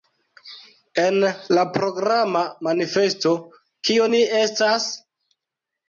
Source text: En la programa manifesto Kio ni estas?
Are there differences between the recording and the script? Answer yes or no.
no